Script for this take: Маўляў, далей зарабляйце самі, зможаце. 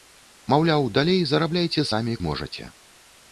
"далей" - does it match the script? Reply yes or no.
yes